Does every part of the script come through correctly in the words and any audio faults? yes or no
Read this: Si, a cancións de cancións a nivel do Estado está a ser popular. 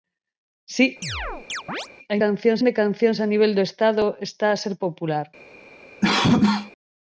no